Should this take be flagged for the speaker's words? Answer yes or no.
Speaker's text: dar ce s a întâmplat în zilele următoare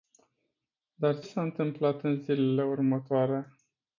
yes